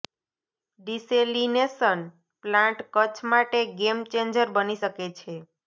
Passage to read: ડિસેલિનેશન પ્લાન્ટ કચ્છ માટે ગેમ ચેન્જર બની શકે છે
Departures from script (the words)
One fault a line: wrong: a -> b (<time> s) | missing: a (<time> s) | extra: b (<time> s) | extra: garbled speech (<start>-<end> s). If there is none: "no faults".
no faults